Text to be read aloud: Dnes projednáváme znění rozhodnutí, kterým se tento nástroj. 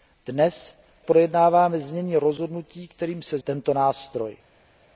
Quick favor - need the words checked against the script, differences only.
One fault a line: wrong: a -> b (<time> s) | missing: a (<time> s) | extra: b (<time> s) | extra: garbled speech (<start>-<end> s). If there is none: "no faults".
no faults